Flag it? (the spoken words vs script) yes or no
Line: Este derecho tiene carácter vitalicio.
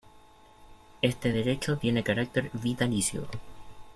no